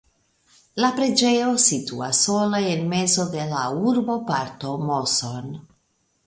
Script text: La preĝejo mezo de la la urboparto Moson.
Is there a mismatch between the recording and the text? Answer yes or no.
yes